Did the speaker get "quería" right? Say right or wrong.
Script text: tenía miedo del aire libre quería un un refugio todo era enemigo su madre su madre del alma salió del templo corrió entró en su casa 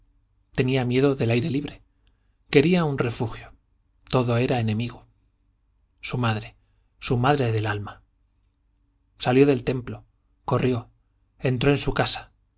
right